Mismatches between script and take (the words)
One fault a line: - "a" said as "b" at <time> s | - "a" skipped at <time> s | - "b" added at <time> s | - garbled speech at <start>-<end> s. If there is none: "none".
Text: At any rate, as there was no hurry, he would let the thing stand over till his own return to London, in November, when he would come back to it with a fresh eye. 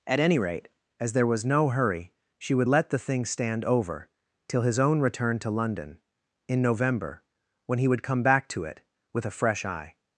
- "he" said as "she" at 2.4 s